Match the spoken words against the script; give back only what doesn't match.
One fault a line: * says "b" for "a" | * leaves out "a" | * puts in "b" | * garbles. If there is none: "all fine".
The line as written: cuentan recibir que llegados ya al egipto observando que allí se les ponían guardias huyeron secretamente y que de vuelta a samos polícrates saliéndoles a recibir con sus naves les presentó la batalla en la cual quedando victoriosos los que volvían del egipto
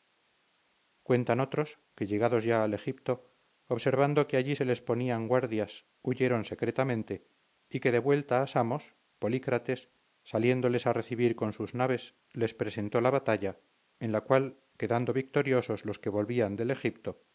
* says "otros" for "recibir"